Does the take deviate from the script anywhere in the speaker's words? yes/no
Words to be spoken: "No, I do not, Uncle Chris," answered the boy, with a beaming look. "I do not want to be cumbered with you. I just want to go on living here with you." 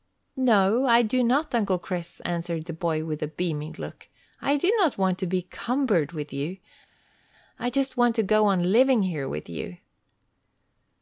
no